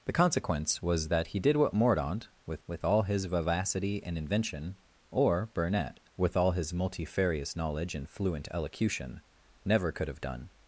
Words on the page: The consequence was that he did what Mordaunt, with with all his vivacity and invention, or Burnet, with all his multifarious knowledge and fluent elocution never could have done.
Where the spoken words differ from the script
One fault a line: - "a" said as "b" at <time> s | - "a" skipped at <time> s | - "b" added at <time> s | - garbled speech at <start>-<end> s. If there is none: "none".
none